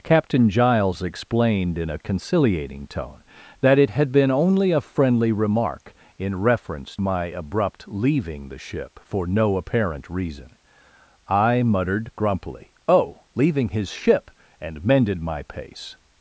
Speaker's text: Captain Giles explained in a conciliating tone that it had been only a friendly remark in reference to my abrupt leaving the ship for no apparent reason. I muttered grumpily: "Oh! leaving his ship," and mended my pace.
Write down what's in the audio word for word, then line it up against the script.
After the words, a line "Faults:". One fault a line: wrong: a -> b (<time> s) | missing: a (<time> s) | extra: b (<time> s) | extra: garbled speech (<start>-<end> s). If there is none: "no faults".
Captain Giles explained in a conciliating tone that it had been only a friendly remark in reference my abrupt leaving the ship for no apparent reason. I muttered grumpily: "Oh! leaving his ship," and mended my pace.
Faults:
missing: to (7.0 s)